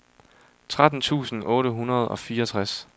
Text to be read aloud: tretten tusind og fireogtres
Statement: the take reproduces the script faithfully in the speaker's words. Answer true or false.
false